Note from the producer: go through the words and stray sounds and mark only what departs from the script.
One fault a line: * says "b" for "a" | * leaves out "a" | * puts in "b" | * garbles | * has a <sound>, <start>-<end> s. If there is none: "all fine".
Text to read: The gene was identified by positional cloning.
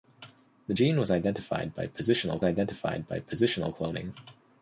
* puts in "identified by positional"